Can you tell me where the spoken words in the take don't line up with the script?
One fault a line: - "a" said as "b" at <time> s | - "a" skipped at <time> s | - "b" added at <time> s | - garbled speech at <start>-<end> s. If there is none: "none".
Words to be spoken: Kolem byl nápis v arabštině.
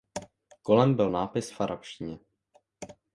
none